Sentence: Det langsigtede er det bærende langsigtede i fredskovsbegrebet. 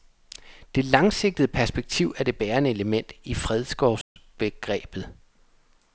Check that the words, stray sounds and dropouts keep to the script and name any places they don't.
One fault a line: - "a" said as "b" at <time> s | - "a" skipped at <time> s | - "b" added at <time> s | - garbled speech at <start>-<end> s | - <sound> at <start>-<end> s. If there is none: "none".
- "perspektiv" added at 1.5 s
- "langsigtede" said as "element" at 2.7 s
- dropout at 4.0-4.2 s